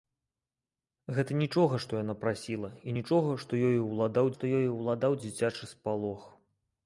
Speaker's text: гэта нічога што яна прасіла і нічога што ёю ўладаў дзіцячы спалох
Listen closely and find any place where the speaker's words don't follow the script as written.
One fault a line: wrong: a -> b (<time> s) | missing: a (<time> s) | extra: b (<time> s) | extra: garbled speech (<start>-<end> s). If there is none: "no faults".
extra: што ёю ўладаў (4.4 s)